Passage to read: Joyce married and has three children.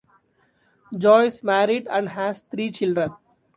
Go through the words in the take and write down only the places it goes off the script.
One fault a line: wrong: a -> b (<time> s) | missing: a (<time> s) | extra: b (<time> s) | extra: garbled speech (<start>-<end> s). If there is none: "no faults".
no faults